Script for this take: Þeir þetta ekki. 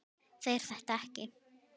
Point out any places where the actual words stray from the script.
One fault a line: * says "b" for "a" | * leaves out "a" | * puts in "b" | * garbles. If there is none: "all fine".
all fine